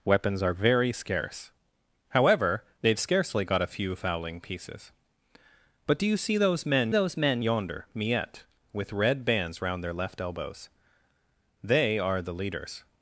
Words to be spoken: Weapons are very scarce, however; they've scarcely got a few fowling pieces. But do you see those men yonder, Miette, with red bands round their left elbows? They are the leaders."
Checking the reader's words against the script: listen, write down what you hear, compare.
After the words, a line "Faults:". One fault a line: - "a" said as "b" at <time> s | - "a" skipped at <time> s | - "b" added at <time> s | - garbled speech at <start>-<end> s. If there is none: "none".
Weapons are very scarce, however; they've scarcely got a few fowling pieces. But do you see those men those men yonder, Miette, with red bands round their left elbows? They are the leaders."
Faults:
- "those men" added at 6.9 s